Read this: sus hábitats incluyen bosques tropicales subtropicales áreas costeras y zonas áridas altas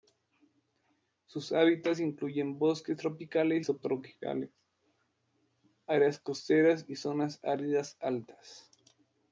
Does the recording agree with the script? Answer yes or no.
yes